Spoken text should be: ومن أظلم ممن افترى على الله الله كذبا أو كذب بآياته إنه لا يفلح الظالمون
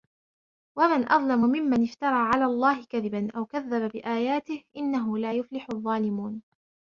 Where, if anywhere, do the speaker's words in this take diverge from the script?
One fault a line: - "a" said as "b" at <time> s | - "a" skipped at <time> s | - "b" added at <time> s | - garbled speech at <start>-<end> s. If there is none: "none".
- "الله" skipped at 2.8 s